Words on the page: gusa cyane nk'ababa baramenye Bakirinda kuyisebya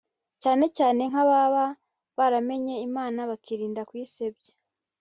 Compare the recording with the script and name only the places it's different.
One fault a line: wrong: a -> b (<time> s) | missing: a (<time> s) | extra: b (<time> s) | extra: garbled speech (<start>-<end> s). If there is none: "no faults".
wrong: gusa -> cyane (0.4 s)
extra: Imana (2.9 s)